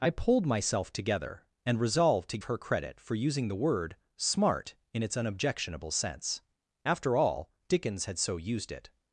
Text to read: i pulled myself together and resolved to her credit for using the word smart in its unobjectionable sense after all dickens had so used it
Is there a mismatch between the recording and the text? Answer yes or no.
no